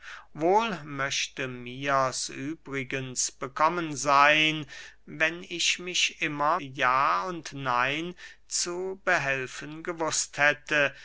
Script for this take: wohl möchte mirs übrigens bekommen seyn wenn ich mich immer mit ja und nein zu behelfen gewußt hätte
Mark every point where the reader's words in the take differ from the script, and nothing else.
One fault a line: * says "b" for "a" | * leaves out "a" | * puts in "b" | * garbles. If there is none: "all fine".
* leaves out "mit"